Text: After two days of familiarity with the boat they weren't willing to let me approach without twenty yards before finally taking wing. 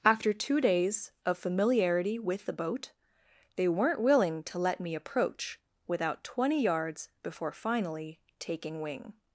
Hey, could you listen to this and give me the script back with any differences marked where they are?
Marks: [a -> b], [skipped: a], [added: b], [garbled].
After two days of familiarity with the boat they weren't willing to let me approach without twenty yards before finally taking wing.